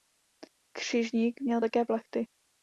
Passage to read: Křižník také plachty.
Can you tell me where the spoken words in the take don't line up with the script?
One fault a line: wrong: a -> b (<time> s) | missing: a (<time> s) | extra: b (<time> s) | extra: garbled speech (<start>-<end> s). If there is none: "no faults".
extra: měl (1.4 s)